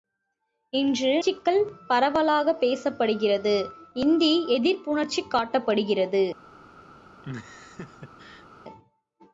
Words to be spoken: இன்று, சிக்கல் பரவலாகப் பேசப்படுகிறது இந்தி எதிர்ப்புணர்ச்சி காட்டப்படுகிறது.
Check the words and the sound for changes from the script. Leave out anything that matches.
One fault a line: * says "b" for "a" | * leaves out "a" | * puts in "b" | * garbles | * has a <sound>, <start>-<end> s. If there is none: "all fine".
* has a laugh, 7.2-8.5 s